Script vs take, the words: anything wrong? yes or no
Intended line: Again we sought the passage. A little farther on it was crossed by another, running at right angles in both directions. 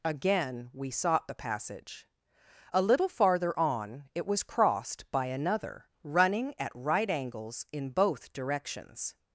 no